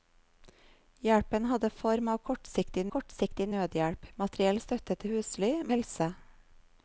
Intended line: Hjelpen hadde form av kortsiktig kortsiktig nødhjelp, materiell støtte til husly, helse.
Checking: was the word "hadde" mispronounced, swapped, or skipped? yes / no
no